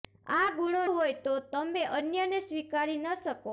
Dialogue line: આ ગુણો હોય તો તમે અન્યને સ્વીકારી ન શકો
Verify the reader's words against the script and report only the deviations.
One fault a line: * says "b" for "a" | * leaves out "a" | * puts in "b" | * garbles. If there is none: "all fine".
all fine